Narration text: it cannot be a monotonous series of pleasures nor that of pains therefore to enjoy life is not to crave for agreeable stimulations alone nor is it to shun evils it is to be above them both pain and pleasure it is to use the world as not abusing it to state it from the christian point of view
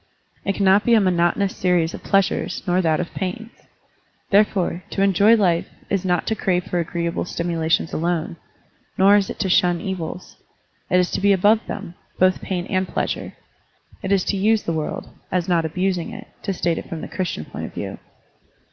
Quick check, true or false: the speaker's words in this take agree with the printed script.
true